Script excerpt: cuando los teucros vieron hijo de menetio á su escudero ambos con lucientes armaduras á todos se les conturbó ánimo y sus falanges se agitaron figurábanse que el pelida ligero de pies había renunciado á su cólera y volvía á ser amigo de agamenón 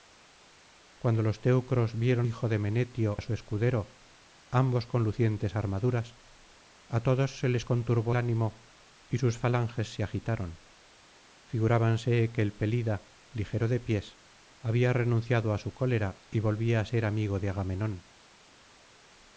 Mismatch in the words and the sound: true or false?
false